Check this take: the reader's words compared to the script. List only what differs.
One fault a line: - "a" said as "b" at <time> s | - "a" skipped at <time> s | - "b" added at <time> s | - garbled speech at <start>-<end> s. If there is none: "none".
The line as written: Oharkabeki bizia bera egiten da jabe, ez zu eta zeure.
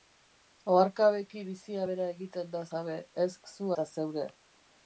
none